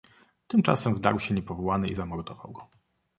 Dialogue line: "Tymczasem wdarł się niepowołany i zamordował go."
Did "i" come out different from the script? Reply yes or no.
no